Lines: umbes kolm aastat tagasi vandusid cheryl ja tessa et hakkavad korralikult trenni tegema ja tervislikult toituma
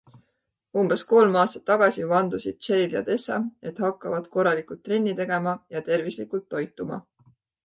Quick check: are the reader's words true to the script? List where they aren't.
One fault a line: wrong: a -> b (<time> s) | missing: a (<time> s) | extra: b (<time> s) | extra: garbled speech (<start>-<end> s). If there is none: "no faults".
no faults